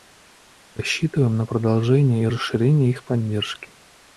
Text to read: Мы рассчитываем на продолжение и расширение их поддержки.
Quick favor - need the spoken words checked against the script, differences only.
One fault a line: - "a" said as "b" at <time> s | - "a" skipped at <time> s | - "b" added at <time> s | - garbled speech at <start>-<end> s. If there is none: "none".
none